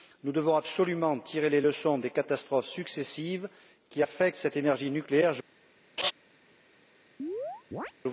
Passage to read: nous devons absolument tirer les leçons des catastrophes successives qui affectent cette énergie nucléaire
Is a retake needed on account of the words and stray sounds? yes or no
yes